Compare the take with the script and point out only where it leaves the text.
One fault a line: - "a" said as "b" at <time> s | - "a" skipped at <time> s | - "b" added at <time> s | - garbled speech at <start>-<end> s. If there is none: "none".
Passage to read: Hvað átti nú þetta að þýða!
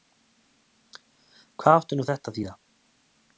none